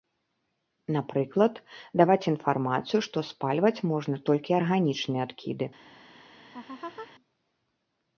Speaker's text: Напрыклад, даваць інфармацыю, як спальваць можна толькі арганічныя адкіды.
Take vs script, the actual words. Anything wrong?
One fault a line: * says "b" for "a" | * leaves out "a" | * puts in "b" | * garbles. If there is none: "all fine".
* says "што" for "як"